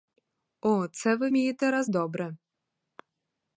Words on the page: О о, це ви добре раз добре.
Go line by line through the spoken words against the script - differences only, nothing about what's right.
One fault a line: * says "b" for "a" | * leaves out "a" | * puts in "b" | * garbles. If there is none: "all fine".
* leaves out "о"
* says "вмієте" for "добре"